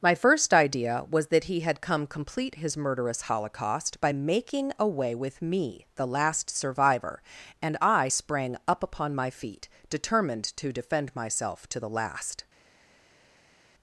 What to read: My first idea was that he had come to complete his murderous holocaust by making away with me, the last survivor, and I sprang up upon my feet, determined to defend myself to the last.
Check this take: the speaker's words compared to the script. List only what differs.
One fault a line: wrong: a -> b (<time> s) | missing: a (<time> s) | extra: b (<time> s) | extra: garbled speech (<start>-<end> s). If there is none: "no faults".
missing: to (2.1 s)